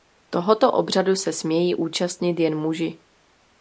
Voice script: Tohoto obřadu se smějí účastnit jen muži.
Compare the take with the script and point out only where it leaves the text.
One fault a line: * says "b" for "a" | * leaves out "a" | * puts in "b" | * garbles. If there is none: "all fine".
all fine